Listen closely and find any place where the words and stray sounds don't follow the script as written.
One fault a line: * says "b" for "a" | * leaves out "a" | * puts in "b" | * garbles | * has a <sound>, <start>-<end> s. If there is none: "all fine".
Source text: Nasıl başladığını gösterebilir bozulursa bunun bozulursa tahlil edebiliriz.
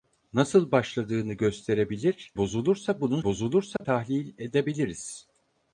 * has a dropout, 3.8-3.8 s